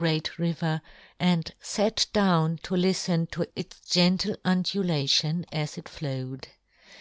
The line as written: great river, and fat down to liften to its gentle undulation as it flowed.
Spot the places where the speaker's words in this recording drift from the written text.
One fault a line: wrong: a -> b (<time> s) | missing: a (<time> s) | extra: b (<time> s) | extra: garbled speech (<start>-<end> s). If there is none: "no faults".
no faults